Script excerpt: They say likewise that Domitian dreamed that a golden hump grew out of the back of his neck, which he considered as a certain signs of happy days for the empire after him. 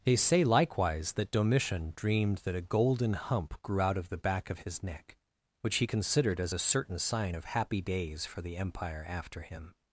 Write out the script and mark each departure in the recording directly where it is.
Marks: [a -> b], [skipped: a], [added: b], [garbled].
They say likewise that Domitian dreamed that a golden hump grew out of the back of his neck, which he considered as a certain [signs -> sign] of happy days for the empire after him.